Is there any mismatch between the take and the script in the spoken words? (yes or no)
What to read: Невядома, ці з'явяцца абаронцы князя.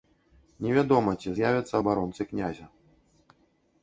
no